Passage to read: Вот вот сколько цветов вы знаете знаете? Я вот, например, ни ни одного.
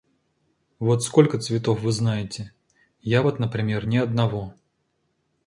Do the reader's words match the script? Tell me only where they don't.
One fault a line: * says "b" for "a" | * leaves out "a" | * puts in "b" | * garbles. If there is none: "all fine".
* leaves out "вот"
* leaves out "знаете"
* leaves out "ни"